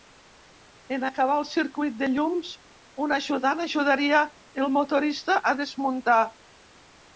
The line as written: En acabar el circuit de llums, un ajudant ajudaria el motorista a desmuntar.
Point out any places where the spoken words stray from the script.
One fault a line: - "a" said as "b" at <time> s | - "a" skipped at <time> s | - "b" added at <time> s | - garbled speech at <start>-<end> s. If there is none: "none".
none